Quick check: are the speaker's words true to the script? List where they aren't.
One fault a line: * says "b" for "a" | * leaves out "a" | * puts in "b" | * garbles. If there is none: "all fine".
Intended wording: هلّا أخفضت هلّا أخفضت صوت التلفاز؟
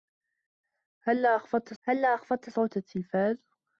all fine